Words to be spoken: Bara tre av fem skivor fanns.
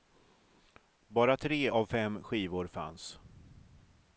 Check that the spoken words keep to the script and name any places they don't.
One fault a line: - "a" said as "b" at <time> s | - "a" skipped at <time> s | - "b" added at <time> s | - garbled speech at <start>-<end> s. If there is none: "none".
none